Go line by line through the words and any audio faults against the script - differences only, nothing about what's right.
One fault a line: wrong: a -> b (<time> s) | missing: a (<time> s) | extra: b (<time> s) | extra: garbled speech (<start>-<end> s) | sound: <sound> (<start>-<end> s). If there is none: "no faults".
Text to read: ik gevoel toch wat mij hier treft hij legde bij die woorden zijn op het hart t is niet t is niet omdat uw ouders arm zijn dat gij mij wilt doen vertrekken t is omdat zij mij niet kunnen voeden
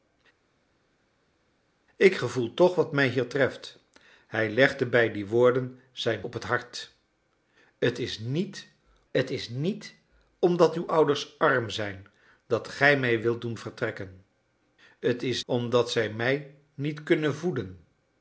no faults